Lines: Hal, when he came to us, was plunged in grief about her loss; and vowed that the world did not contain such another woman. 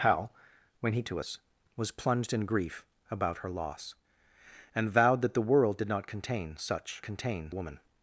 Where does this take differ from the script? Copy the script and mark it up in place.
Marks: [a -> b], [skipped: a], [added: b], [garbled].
Hal, when he [skipped: came] to us, was plunged in grief about her loss; and vowed that the world did not contain such [another -> contain] woman.